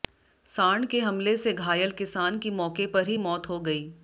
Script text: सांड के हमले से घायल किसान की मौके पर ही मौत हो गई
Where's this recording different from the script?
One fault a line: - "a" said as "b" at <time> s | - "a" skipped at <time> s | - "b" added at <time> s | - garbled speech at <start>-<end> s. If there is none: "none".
none